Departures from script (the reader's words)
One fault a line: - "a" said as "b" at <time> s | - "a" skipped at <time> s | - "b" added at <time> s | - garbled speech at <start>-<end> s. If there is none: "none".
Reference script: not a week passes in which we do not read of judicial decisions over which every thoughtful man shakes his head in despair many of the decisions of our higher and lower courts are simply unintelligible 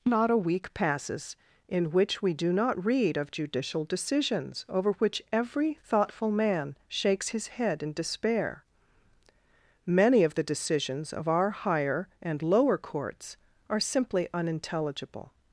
none